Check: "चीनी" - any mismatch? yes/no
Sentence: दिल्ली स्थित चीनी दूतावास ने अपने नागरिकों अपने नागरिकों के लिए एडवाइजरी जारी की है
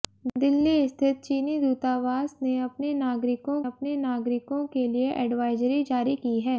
no